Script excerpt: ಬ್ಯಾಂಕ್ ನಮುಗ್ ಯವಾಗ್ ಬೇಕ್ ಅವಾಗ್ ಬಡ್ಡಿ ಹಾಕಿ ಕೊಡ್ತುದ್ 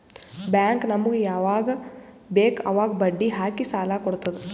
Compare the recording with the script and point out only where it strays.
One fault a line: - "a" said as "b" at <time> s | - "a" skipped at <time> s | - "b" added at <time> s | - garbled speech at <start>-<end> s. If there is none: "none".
- "ಸಾಲ" added at 3.7 s